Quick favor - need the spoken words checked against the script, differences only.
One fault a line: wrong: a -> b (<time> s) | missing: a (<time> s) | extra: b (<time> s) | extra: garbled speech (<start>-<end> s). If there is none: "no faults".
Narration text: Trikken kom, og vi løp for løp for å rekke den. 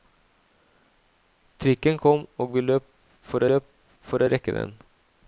no faults